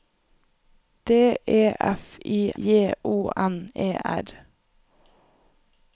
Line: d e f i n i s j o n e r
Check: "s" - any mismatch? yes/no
yes